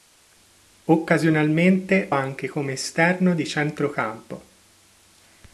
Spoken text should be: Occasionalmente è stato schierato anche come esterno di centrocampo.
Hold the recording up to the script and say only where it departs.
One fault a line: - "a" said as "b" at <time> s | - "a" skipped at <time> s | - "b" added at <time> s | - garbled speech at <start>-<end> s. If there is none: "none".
- "è stato schierato" skipped at 2.1 s